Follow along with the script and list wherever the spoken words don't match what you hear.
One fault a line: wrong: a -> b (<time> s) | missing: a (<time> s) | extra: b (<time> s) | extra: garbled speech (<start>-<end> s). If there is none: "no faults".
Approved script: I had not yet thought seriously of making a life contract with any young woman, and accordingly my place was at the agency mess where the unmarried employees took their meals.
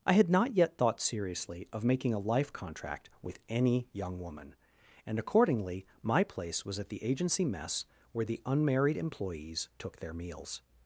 no faults